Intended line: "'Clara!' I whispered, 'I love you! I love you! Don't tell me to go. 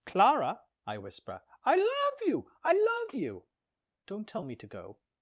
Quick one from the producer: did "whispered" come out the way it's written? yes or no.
no